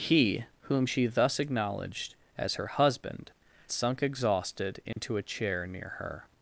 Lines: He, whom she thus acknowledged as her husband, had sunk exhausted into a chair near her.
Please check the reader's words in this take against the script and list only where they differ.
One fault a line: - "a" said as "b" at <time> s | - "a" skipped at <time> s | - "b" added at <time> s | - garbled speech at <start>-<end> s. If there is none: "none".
- "had" skipped at 3.3 s